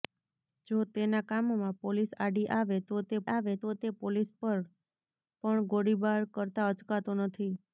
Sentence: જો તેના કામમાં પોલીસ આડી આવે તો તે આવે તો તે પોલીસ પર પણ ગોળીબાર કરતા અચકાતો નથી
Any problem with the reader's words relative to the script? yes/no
no